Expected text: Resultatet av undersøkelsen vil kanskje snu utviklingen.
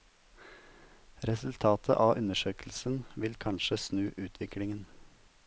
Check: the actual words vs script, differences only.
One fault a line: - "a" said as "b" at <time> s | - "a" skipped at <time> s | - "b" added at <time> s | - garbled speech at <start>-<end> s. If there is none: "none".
none